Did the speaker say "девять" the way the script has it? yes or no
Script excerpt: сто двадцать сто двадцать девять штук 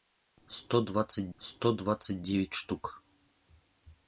yes